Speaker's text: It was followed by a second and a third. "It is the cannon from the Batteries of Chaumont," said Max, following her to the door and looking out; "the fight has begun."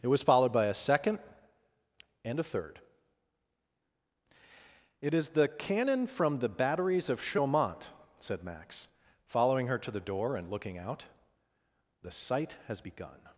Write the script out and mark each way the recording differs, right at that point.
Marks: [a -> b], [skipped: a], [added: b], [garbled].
It was followed by a second and a third. "It is the cannon from the Batteries of Chaumont," said Max, following her to the door and looking out; "the [fight -> sight] has begun."